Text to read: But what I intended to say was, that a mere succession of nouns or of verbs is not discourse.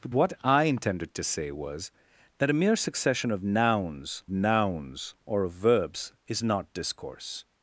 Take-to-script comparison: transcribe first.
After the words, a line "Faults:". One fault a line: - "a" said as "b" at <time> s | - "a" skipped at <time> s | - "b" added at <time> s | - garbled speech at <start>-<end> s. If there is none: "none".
But what I intended to say was, that a mere succession of nouns nouns or of verbs is not discourse.
Faults:
- "nouns" added at 4.3 s